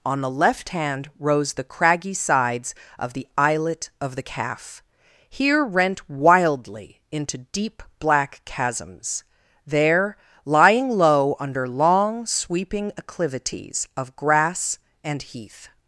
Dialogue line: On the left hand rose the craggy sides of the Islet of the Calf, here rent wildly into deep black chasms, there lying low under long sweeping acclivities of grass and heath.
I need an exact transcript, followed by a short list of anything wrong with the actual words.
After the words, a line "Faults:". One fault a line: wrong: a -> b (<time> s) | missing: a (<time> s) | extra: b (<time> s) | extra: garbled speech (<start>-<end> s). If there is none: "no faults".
On the left hand rose the craggy sides of the Islet of the Calf, here rent wildly into deep black chasms, there lying low under long sweeping acclivities of grass and heath.
Faults:
no faults